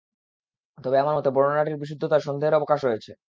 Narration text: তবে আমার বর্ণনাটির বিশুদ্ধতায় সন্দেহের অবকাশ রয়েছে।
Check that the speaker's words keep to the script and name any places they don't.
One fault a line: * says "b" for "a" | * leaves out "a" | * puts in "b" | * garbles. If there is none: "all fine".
* puts in "মতে"